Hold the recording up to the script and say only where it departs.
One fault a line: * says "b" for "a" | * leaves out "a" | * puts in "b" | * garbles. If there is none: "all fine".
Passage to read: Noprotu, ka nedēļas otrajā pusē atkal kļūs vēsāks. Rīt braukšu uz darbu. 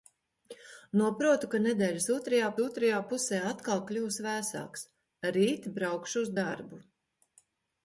* puts in "otrajā"